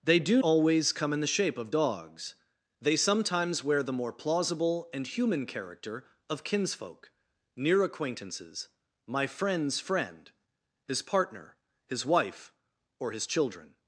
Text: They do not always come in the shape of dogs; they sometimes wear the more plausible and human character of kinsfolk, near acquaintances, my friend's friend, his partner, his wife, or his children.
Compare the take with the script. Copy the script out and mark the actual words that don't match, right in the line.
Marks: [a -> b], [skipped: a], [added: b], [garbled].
They do [skipped: not] always come in the shape of dogs; they sometimes wear the more plausible and human character of kinsfolk, near acquaintances, my friend's friend, his partner, his wife, or his children.